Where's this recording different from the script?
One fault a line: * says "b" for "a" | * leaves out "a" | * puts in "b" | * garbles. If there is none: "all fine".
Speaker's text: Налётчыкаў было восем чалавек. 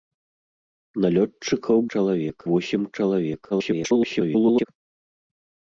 * says "чалавек" for "было"
* garbles